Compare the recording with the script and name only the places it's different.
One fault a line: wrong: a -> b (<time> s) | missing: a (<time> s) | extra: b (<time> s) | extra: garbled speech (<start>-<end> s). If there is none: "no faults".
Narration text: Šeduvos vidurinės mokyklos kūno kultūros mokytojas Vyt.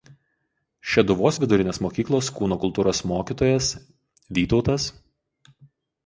no faults